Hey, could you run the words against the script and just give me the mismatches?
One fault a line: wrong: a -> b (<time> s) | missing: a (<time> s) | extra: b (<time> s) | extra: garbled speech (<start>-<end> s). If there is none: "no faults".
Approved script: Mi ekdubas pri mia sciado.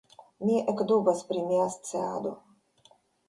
no faults